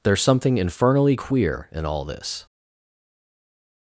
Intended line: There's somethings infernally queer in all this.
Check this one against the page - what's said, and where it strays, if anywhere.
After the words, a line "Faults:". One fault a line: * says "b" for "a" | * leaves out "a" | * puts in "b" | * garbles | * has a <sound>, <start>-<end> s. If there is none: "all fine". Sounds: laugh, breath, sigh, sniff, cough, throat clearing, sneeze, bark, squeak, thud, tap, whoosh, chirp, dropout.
There's something infernally queer in all this.
Faults:
* says "something" for "somethings"